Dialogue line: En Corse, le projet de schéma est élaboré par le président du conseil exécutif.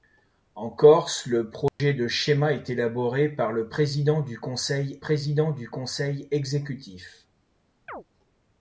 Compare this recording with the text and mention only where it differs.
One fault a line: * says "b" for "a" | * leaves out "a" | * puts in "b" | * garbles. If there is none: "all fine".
* puts in "président du conseil"